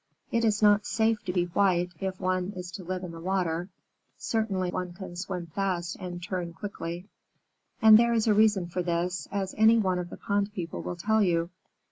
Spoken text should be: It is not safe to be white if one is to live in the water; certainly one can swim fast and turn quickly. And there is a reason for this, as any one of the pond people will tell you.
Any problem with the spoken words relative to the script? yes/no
no